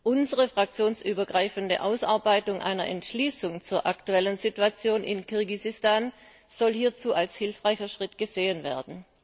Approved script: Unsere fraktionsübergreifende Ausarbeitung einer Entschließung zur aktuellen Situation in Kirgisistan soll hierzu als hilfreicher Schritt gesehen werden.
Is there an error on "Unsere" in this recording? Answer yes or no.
no